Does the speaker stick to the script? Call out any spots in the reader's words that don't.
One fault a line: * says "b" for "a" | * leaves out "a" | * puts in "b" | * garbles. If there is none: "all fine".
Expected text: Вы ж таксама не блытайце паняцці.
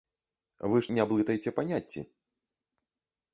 * leaves out "таксама"